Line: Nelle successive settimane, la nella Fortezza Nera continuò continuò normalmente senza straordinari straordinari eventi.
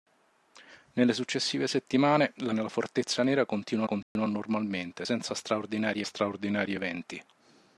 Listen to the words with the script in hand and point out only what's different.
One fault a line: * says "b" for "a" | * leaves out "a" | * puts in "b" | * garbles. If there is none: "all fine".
all fine